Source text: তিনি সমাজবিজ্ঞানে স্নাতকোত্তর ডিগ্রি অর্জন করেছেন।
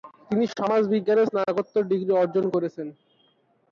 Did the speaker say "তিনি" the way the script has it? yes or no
yes